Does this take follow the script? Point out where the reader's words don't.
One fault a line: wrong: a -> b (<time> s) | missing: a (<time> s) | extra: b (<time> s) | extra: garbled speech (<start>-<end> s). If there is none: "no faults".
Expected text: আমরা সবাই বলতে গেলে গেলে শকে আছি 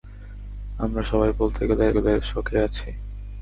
no faults